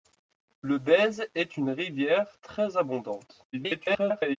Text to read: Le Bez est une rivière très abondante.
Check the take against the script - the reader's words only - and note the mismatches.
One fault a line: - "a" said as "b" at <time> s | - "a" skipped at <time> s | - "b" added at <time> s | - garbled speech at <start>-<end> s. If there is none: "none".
- garbled speech at 3.5-4.4 s